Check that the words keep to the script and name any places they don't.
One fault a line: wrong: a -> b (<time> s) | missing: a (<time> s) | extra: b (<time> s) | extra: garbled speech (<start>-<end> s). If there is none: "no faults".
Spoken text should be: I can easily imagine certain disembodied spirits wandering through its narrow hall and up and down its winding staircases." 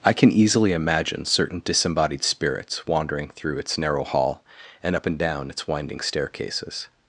no faults